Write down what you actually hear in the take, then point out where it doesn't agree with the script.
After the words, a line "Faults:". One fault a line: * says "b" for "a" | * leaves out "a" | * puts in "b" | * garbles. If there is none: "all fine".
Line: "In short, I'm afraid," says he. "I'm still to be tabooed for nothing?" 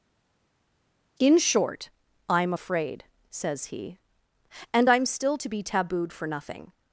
"In short, I'm afraid," says he. "And I'm still to be tabooed for nothing?"
Faults:
* puts in "And"